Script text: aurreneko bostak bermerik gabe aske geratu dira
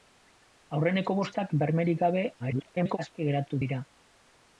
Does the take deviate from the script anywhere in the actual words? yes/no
yes